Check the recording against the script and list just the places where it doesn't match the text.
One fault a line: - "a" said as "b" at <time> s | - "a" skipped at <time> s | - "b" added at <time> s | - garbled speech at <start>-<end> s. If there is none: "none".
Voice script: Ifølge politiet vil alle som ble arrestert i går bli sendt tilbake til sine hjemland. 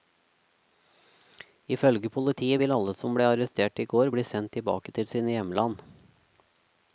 none